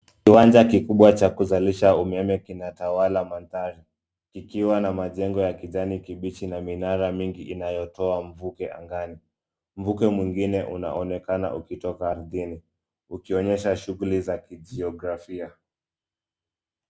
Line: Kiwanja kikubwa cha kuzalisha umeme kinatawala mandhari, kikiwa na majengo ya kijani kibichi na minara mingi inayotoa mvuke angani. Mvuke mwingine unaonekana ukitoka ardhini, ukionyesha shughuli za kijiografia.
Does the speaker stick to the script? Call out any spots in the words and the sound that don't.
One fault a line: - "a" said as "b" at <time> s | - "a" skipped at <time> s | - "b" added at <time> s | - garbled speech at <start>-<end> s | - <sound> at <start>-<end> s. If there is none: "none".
none